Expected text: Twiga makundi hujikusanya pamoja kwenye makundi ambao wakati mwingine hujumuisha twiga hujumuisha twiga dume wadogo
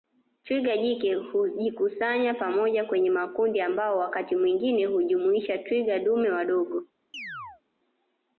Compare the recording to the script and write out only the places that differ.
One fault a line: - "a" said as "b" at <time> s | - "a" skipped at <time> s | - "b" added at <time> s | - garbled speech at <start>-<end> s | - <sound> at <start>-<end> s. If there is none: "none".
- "makundi" said as "jike" at 0.8 s
- "hujumuisha twiga" skipped at 6.0 s
- chirp at 7.1-7.6 s